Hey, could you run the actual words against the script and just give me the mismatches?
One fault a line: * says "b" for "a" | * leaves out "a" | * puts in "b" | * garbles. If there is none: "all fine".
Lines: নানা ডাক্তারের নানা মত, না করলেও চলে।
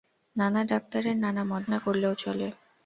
all fine